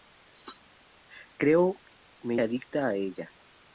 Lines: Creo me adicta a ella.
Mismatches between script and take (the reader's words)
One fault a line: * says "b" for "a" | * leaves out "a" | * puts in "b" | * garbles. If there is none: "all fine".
all fine